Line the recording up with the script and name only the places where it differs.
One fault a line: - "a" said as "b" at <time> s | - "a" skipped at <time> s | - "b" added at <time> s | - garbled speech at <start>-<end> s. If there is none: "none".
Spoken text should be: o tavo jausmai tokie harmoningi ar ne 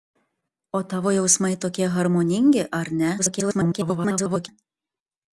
- garbled speech at 3.2-4.5 s